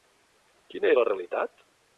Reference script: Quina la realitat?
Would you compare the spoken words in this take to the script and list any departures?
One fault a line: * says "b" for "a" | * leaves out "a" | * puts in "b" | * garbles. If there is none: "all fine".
all fine